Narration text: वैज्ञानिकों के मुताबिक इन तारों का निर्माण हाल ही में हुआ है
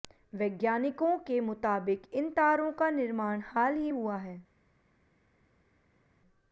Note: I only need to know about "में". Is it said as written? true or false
false